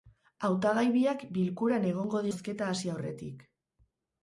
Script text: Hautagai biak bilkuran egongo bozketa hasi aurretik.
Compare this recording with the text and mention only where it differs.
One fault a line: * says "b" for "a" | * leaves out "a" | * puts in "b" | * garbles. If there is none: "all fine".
all fine